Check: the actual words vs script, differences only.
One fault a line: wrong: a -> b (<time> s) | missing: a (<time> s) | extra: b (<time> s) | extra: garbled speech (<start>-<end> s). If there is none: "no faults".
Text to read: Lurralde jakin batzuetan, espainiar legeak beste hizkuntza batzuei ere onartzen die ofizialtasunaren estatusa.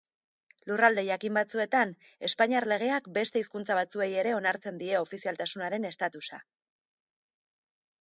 no faults